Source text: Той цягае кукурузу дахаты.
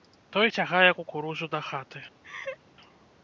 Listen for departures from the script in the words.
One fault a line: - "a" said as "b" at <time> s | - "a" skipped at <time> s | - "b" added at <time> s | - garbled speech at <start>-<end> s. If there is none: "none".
none